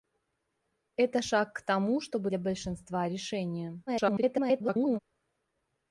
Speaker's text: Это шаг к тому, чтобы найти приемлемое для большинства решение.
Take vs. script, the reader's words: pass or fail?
fail